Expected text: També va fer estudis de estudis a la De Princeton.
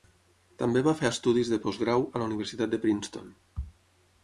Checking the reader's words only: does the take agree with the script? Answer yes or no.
no